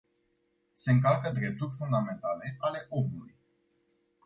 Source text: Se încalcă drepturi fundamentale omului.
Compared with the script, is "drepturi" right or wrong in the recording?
right